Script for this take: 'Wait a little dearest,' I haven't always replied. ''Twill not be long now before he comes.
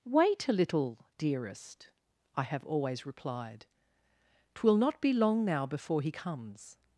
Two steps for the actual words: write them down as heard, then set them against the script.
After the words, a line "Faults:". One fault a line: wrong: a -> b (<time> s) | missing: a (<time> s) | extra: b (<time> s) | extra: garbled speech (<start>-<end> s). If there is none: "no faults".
'Wait a little dearest,' I have always replied. ''Twill not be long now before he comes.
Faults:
wrong: haven't -> have (2.4 s)